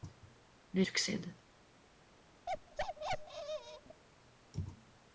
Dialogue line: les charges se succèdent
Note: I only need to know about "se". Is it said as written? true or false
false